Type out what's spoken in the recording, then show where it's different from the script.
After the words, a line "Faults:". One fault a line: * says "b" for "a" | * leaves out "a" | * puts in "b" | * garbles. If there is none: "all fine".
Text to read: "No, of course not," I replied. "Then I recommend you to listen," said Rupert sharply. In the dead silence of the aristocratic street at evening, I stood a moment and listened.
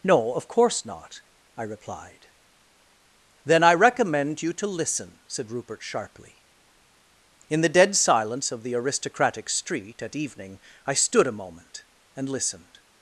"No, of course not," I replied. "Then I recommend you to listen," said Rupert sharply. In the dead silence of the aristocratic street at evening, I stood a moment and listened.
Faults:
all fine